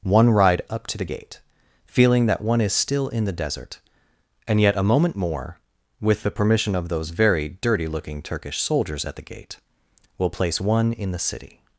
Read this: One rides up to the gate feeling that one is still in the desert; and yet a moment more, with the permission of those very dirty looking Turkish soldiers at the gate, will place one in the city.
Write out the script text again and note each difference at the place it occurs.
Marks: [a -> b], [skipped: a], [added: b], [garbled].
One [rides -> ride] up to the gate feeling that one is still in the desert; and yet a moment more, with the permission of those very dirty looking Turkish soldiers at the gate, will place one in the city.